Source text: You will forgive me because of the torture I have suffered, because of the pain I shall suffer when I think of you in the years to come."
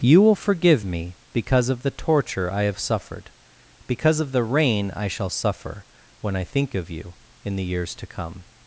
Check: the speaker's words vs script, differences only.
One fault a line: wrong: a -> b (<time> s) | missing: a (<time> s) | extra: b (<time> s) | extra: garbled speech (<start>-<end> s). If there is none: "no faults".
wrong: pain -> rain (4.4 s)